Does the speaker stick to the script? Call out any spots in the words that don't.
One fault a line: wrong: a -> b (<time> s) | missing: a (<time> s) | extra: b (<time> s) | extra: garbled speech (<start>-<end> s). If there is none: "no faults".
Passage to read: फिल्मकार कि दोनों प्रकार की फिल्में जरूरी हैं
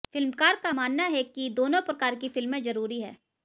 extra: का मानना है (0.6 s)